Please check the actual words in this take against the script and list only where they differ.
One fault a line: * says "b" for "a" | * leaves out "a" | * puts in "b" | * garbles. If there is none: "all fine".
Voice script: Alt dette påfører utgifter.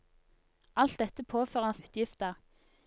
all fine